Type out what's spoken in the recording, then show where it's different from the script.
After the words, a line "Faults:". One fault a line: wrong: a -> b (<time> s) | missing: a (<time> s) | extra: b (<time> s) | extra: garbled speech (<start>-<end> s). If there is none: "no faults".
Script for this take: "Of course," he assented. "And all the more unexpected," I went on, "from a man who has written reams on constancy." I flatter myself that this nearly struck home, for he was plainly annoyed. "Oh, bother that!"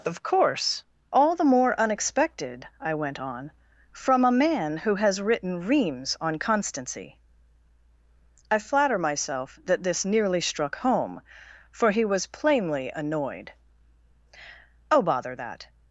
"Of course," all the more unexpected," I went on, "from a man who has written reams on constancy." I flatter myself that this nearly struck home, for he was plainly annoyed. "Oh, bother that!"
Faults:
missing: he assented And (0.8 s)